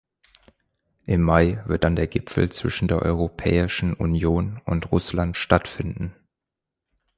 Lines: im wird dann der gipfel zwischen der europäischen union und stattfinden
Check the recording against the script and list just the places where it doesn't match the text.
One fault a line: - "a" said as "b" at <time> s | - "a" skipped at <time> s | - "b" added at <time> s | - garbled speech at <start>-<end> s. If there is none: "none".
- "mai" added at 1.2 s
- "russland" added at 4.9 s